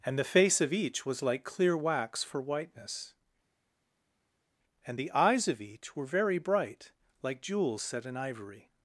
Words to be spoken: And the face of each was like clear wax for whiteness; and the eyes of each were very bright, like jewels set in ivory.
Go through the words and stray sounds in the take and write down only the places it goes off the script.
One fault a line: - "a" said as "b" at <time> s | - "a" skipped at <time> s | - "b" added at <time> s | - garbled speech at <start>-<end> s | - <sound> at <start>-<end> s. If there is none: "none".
none